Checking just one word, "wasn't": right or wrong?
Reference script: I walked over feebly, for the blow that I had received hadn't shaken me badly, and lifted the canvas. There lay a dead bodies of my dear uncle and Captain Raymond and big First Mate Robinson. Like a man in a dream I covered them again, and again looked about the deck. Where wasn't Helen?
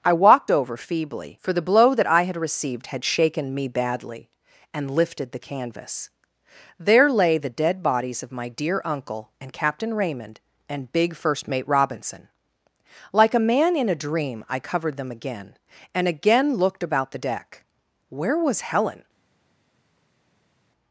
wrong